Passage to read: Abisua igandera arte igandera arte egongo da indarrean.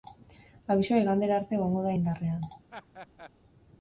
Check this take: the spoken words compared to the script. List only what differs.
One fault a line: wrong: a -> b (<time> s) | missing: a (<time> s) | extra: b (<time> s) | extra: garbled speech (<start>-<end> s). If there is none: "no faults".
missing: igandera arte (1.6 s)